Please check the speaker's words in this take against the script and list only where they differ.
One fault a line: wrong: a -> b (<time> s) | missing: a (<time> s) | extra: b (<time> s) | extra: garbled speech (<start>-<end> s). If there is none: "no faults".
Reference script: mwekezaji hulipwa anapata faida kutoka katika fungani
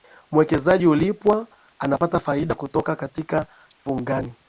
no faults